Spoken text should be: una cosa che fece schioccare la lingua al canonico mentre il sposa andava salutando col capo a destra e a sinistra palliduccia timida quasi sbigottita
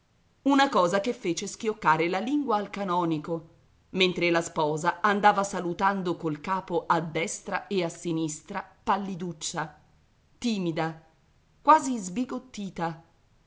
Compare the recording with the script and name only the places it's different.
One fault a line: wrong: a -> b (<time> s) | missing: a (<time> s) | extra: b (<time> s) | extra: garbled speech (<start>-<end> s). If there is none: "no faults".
wrong: il -> la (4.3 s)